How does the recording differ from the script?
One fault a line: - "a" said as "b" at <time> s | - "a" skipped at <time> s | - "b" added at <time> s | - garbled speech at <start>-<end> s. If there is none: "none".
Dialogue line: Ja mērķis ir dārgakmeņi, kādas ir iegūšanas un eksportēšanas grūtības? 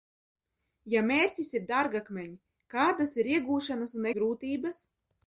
- "eksportēšanas" skipped at 4.1 s